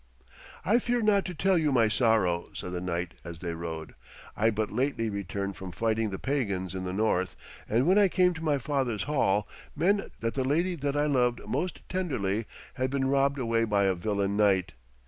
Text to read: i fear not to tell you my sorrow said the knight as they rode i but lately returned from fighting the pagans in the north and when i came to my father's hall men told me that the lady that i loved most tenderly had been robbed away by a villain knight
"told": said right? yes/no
no